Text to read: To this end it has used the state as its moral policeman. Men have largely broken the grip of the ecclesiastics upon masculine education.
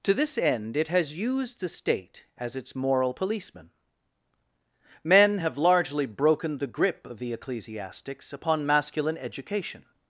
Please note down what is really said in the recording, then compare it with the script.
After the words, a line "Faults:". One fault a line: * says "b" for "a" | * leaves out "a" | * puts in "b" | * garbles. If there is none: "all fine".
To this end it has used the state as its moral policeman. Men have largely broken the grip of the ecclesiastics upon masculine education.
Faults:
all fine